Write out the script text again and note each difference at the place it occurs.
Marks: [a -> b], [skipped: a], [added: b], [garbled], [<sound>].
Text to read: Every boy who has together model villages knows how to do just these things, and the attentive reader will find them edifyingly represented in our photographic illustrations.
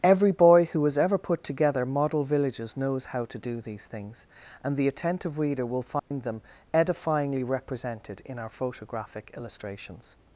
Every boy who has [added: ever put] together model villages knows how to do [skipped: just] these things, and the attentive reader will find [dropout] them edifyingly represented in our photographic illustrations.